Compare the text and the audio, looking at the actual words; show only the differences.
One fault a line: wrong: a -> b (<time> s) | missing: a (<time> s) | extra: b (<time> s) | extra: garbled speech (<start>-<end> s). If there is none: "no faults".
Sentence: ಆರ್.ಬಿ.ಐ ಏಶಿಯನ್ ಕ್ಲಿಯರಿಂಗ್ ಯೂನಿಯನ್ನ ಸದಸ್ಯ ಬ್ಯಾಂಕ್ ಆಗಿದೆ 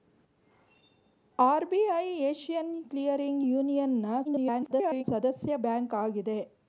extra: garbled speech (4.2-5.0 s)